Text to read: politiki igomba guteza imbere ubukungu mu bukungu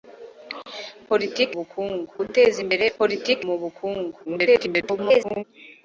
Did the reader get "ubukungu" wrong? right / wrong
wrong